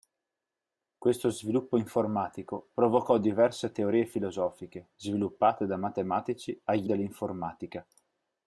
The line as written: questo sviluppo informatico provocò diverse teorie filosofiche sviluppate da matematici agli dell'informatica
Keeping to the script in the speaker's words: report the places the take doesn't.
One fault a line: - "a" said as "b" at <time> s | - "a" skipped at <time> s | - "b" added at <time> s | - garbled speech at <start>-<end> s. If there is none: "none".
none